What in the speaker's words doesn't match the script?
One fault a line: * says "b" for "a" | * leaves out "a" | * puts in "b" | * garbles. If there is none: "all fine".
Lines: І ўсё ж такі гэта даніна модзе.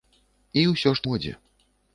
* leaves out "такі гэта даніна"